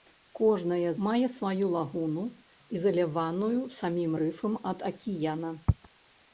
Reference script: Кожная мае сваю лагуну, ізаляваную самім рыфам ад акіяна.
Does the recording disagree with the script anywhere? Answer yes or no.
no